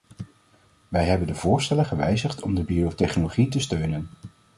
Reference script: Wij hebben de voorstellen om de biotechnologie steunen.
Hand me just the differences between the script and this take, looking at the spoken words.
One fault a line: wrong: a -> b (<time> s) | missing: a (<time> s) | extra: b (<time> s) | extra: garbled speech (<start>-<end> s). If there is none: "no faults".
extra: gewijzigd (1.8 s)
extra: te (3.5 s)